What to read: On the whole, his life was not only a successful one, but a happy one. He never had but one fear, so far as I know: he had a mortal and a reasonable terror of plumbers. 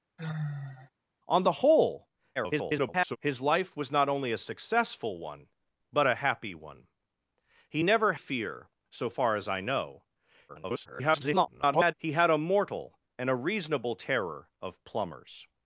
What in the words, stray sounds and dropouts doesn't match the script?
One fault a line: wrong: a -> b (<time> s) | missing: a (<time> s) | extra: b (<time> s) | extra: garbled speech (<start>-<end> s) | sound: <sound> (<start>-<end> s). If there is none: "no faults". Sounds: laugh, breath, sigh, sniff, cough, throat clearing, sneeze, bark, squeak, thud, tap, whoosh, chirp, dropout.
sound: sigh (0.2-0.9 s)
extra: garbled speech (2.4-3.2 s)
missing: had but one (8.1 s)
extra: garbled speech (10.5-11.9 s)